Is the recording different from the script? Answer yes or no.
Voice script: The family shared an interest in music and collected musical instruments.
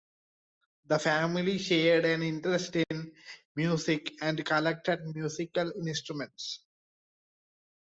no